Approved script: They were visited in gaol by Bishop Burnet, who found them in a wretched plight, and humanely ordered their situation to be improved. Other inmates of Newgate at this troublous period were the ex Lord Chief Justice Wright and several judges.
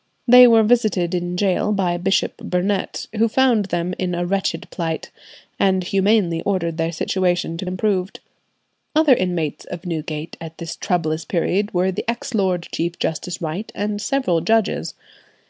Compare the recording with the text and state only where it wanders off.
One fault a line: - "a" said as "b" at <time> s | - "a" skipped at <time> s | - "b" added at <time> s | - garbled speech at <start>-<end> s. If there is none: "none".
- "be" skipped at 7.7 s